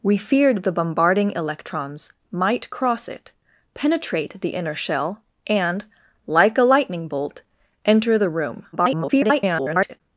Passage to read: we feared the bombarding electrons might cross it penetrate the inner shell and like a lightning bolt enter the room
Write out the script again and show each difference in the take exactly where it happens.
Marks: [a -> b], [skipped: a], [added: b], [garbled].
we feared the bombarding electrons might cross it penetrate the inner shell and like a lightning bolt enter the room [garbled]